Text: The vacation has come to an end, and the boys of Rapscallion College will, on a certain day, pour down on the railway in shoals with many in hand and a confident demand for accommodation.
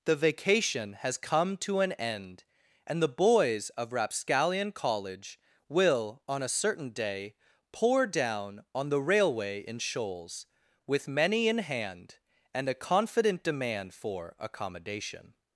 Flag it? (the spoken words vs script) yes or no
no